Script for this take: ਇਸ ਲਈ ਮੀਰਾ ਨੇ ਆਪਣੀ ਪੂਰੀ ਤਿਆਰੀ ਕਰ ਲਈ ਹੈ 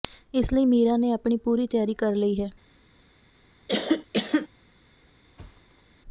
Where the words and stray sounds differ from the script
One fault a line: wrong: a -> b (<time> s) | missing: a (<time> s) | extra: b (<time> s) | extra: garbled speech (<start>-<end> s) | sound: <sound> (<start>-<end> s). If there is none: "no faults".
sound: cough (3.7-4.5 s)
sound: thud (5.4-5.8 s)